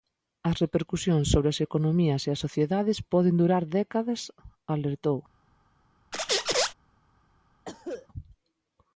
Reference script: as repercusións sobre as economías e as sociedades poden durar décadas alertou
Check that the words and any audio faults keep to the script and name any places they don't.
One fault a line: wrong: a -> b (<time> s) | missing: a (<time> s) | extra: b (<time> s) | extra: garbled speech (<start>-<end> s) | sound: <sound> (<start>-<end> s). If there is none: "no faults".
sound: squeak (6.1-6.7 s)
sound: cough (7.6-8.1 s)